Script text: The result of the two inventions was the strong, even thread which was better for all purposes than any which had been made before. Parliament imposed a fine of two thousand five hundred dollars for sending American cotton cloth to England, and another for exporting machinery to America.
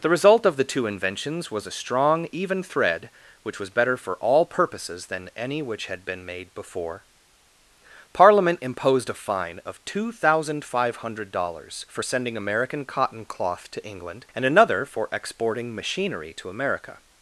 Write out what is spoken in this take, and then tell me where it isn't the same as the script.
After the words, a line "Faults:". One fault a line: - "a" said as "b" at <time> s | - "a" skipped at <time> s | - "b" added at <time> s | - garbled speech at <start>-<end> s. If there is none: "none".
The result of the two inventions was a strong, even thread which was better for all purposes than any which had been made before. Parliament imposed a fine of two thousand five hundred dollars for sending American cotton cloth to England, and another for exporting machinery to America.
Faults:
- "the" said as "a" at 1.7 s